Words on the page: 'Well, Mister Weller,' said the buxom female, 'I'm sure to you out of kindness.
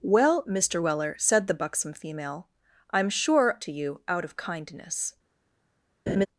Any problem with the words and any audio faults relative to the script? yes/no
yes